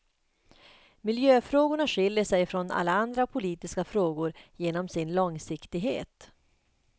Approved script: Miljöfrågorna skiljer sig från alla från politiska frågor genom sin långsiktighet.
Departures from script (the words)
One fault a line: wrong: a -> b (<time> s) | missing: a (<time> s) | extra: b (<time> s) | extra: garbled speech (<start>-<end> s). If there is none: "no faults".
wrong: från -> andra (2.9 s)